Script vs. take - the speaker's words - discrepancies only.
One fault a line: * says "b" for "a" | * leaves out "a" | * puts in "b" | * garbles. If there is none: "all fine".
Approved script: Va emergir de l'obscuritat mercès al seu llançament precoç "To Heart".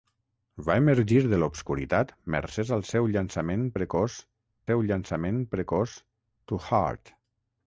* puts in "seu llançament precoç"